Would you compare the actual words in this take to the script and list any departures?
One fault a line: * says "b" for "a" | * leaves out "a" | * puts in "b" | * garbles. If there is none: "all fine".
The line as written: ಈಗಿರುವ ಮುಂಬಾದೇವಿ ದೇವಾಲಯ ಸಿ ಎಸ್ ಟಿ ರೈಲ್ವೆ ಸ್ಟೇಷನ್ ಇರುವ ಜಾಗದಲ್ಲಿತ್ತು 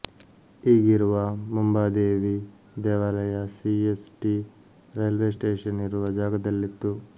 all fine